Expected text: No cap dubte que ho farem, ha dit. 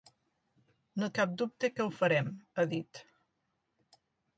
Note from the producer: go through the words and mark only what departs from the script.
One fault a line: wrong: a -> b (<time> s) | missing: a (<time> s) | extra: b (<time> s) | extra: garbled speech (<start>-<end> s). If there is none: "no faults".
no faults